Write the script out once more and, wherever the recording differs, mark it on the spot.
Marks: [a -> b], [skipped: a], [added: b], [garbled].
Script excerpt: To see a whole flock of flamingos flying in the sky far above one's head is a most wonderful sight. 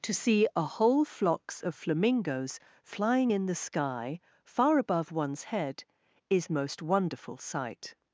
To see a whole [flock -> flocks] of flamingos flying in the sky far above one's head is [skipped: a] most wonderful sight.